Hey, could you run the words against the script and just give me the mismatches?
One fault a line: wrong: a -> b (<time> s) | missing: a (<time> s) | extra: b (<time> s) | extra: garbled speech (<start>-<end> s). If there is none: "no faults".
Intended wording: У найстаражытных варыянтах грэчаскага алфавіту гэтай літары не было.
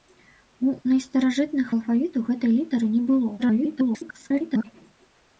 missing: варыянтах грэчаскага (1.7 s)
extra: garbled speech (3.4-4.6 s)